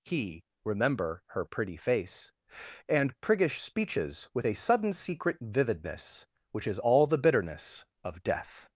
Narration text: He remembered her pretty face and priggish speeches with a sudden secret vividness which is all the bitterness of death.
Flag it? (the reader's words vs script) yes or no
yes